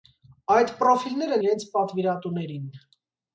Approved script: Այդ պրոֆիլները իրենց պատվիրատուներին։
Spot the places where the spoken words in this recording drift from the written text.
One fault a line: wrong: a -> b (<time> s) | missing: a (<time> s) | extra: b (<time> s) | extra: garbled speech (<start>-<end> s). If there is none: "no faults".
no faults